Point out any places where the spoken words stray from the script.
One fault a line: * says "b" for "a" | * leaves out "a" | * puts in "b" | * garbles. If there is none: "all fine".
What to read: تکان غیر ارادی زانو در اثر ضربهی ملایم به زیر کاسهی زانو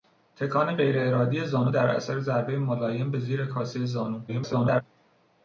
* garbles